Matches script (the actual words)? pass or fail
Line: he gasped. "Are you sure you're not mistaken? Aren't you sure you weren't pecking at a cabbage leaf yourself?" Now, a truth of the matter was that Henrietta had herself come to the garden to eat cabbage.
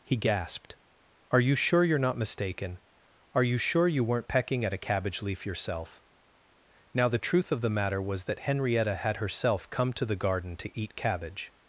fail